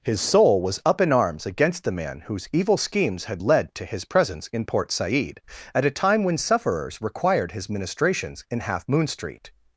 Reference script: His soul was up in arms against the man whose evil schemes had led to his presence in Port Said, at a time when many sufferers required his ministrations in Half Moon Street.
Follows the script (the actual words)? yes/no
no